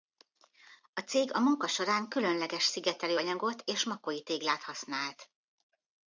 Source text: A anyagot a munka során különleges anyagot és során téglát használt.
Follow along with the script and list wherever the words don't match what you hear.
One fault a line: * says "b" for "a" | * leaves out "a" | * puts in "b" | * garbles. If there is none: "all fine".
* says "cég" for "anyagot"
* puts in "szigetelő"
* says "makói" for "során"